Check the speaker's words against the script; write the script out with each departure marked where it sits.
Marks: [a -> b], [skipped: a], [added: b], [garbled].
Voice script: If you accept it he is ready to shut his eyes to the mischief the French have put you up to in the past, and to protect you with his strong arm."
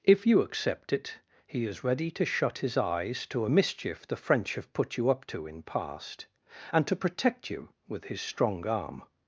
If you accept it he is ready to shut his eyes to [the -> a] mischief the French have put you up to in [skipped: the] past, and to protect you with his strong arm."